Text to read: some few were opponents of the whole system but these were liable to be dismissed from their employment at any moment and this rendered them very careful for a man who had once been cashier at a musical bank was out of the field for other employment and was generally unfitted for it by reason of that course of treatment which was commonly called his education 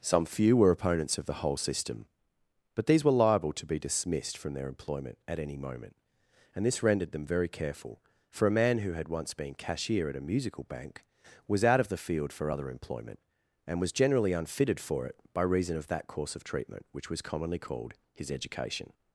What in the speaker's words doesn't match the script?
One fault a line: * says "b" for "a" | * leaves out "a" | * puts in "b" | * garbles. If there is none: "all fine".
all fine